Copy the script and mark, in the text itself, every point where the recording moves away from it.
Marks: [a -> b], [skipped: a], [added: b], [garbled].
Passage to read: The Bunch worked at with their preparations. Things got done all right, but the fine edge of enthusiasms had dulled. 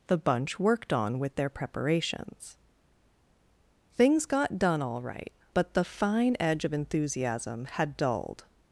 The Bunch worked [at -> on] with their preparations. Things got done all right, but the fine edge of [enthusiasms -> enthusiasm] had dulled.